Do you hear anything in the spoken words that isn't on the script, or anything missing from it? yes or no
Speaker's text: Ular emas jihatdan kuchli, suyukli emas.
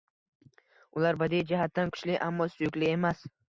yes